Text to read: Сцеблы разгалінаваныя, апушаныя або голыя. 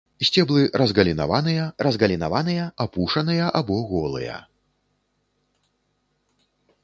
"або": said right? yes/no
yes